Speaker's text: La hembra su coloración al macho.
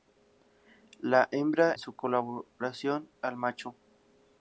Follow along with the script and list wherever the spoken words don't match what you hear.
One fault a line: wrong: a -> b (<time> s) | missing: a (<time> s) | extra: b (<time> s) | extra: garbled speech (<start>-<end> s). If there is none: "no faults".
no faults